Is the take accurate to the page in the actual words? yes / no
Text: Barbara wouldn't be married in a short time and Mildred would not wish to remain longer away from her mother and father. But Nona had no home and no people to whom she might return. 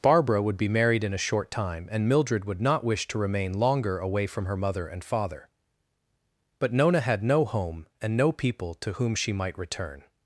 no